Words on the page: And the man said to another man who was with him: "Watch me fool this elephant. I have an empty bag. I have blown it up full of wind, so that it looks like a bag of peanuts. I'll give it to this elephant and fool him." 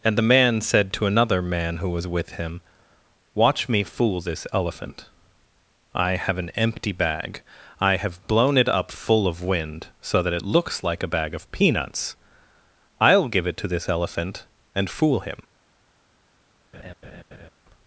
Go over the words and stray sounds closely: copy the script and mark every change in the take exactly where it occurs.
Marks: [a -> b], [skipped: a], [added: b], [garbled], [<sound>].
And the man said to another man who was with him: "Watch me fool this elephant. I have an empty bag. I have blown it up full of wind, so that it looks like a bag of peanuts. I'll give it to this elephant and fool him." [laugh]